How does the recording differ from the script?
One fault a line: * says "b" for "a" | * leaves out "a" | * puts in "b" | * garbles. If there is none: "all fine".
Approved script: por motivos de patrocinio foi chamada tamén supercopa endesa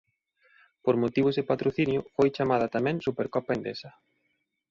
all fine